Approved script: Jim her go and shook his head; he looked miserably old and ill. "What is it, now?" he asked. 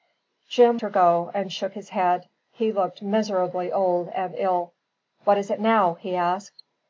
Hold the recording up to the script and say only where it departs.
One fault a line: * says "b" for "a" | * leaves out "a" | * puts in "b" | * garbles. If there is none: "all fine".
all fine